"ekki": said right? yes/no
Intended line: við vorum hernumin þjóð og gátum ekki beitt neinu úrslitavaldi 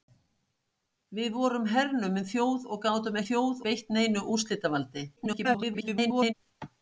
no